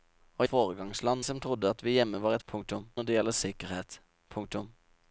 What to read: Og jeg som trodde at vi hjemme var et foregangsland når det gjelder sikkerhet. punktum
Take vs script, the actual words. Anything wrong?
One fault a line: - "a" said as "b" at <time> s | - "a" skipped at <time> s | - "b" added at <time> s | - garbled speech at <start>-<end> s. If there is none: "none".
- "jeg" said as "foregangsland" at 0.5 s
- "foregangsland" said as "punktum" at 2.5 s